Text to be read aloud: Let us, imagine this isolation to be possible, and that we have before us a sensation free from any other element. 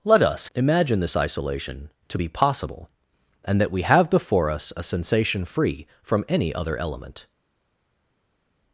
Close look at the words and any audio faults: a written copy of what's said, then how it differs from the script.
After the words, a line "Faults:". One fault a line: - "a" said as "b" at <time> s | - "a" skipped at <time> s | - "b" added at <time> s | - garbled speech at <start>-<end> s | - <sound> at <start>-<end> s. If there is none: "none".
Let us, imagine this isolation to be possible, and that we have before us a sensation free from any other element.
Faults:
none